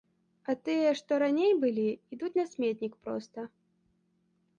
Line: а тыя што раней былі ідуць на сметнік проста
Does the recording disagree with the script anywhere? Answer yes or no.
no